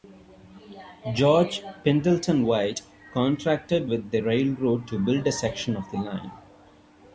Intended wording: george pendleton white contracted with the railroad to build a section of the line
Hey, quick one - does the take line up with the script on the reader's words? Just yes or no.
yes